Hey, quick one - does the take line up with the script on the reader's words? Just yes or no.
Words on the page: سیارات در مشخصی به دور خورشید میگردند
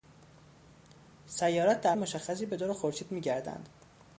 yes